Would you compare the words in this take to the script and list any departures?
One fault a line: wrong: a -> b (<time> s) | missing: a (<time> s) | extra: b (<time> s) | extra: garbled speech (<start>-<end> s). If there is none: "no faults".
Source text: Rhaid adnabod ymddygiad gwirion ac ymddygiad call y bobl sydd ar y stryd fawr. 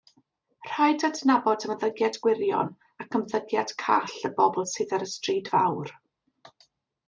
no faults